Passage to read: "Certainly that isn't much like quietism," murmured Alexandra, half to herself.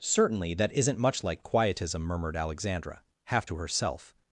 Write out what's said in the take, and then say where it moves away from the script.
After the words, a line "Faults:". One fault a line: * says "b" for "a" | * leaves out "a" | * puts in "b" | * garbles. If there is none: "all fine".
"Certainly that isn't much like quietism," murmured Alexandra, half to herself.
Faults:
all fine